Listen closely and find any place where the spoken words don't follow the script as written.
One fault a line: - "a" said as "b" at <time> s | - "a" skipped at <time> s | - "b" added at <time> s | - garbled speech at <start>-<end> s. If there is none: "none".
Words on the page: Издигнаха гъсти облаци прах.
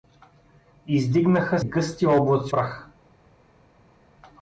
none